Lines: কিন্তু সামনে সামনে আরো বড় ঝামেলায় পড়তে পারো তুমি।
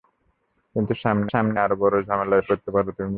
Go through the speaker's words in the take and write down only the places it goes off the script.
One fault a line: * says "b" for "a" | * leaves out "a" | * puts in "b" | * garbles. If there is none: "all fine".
all fine